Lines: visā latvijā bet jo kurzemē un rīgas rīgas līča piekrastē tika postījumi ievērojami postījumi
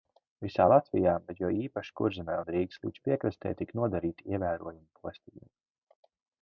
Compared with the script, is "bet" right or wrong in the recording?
right